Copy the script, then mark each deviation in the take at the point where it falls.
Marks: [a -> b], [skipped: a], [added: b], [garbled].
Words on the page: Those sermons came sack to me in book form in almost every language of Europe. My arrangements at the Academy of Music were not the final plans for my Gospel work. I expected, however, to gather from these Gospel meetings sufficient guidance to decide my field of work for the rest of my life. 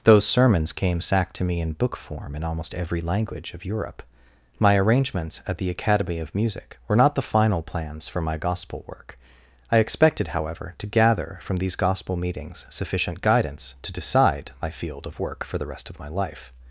Those sermons came sack to me in book form in almost every language of Europe. My arrangements at the Academy of Music were not the final plans for my Gospel work. I expected, however, to gather from these Gospel meetings sufficient guidance to decide my field of work for the rest of my life.